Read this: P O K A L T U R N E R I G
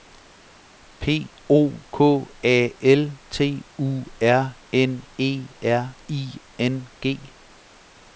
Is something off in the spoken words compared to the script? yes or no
yes